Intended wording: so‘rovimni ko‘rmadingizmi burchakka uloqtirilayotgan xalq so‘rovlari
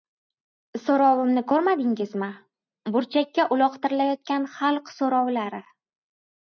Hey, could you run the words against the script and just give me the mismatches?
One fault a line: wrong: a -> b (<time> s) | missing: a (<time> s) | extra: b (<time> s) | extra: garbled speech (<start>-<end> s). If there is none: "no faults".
no faults